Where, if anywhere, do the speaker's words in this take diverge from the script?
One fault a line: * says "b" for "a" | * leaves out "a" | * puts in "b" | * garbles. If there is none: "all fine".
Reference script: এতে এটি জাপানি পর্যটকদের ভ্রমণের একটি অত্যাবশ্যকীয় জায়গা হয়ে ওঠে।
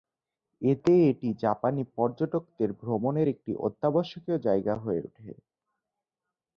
all fine